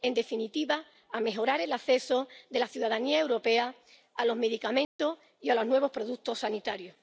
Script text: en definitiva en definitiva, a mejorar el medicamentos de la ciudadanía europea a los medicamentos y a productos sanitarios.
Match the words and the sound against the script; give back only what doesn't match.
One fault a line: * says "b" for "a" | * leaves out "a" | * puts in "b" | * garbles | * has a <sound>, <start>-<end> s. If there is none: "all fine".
* leaves out "en definitiva"
* says "acceso" for "medicamentos"
* has a dropout, 4.8-5.0 s
* puts in "los nuevos"